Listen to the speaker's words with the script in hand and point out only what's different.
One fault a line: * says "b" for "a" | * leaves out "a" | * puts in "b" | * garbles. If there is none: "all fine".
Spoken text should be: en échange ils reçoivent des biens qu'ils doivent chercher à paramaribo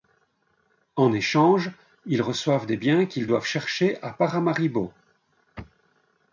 all fine